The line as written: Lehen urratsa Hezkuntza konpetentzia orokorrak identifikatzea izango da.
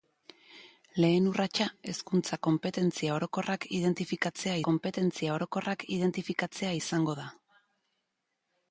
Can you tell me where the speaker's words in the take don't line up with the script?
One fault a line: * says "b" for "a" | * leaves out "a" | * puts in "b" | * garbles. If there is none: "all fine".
* puts in "konpetentzia orokorrak identifikatzea"